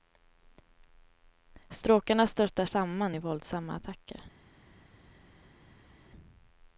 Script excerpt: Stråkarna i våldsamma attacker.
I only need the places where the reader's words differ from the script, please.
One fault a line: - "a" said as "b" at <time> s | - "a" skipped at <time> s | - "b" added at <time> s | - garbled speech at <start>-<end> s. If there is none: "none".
- "störtar samman" added at 2.3 s